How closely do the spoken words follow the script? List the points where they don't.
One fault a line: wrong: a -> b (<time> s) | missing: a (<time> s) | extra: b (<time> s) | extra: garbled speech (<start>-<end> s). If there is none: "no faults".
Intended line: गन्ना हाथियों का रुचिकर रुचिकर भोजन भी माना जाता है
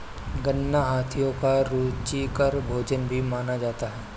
missing: रुचिकर (2.6 s)